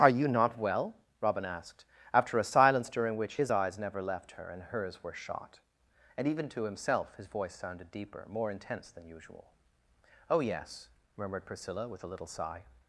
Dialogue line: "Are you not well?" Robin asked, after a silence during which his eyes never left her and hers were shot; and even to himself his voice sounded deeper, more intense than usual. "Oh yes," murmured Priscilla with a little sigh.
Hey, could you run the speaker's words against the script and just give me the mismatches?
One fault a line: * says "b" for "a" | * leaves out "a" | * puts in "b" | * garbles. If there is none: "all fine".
all fine